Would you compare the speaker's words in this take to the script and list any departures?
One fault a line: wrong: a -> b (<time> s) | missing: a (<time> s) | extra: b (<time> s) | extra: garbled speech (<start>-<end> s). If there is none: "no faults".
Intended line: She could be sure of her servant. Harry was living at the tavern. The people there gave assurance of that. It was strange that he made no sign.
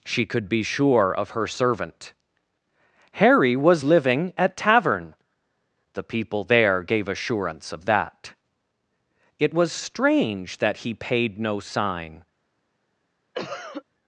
missing: the (4.6 s)
wrong: made -> paid (10.9 s)